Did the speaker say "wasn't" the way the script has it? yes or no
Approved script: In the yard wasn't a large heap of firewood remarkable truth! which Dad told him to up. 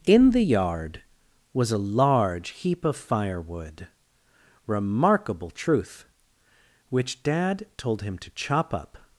no